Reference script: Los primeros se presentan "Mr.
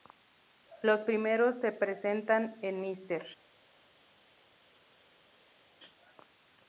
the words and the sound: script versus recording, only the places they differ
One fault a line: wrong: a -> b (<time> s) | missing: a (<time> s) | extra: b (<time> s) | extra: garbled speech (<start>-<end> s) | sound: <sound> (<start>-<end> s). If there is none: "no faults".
extra: en (2.6 s)